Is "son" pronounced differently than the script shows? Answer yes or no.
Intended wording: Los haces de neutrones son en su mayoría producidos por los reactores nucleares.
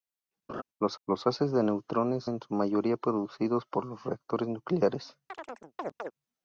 yes